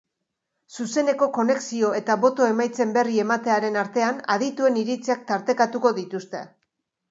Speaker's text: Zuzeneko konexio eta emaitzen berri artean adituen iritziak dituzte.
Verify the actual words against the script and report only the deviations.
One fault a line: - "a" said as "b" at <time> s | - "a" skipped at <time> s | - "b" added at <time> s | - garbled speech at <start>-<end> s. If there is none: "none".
- "boto" added at 2.2 s
- "ematearen" added at 3.3 s
- "tartekatuko" added at 5.4 s